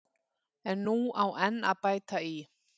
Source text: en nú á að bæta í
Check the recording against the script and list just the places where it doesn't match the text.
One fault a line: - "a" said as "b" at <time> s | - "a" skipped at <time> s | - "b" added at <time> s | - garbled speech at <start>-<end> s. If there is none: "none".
- "enn" added at 1.5 s